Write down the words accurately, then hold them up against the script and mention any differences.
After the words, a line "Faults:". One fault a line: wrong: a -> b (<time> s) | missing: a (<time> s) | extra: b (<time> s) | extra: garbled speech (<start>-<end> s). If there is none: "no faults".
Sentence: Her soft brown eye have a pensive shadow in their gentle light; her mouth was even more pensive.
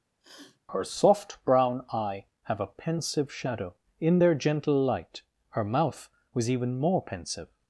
Her soft brown eye have a pensive shadow in their gentle light; her mouth was even more pensive.
Faults:
no faults